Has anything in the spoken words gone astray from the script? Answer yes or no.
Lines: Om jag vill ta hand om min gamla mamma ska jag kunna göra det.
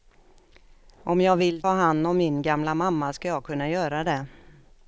yes